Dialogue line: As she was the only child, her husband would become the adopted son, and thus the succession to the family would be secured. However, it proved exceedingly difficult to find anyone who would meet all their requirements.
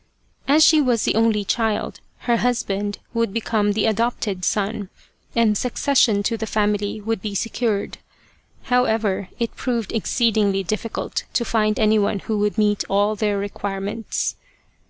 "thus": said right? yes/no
no